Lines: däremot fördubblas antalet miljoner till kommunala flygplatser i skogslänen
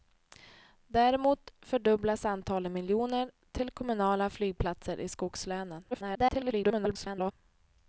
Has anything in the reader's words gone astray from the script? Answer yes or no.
yes